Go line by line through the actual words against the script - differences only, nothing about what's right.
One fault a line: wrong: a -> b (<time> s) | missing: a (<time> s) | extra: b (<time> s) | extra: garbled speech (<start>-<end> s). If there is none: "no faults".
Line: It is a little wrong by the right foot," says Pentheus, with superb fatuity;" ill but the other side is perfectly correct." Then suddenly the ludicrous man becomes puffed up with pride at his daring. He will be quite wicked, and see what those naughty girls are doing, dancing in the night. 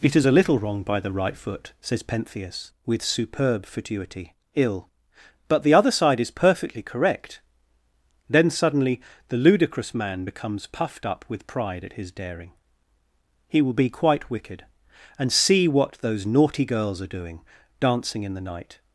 no faults